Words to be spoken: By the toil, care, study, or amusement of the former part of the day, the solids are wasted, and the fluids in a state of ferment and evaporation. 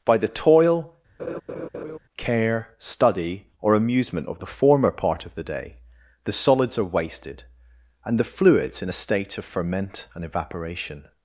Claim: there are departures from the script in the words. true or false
false